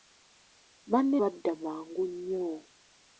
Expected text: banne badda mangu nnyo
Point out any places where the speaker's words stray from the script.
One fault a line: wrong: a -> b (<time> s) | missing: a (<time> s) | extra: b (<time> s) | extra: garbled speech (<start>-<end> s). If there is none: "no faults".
no faults